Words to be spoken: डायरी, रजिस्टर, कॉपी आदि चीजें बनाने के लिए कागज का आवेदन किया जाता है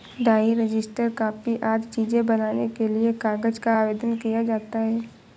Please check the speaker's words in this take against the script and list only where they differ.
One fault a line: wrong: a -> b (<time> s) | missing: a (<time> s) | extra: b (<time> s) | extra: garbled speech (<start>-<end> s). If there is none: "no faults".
no faults